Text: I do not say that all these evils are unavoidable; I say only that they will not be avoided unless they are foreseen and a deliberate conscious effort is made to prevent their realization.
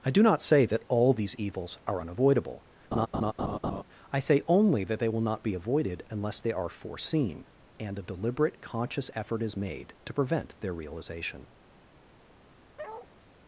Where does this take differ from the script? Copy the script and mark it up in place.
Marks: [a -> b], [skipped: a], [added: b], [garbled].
I do not say that all these evils are unavoidable; I say only that they will not be avoided unless they are foreseen and a deliberate conscious effort is made to prevent their realization.